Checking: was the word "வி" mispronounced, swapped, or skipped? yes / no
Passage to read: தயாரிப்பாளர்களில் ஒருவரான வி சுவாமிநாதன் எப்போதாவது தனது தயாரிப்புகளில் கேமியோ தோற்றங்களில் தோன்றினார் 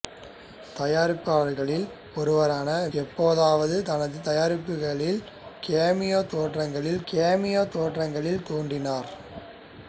yes